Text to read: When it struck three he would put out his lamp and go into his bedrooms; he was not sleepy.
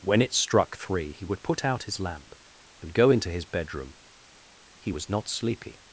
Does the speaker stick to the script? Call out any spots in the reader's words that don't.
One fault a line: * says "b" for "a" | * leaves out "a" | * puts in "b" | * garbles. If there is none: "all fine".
* says "bedroom" for "bedrooms"